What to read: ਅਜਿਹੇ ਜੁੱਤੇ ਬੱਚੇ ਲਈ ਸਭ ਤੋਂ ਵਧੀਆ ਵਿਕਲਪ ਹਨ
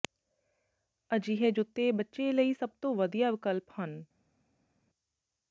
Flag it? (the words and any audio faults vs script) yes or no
no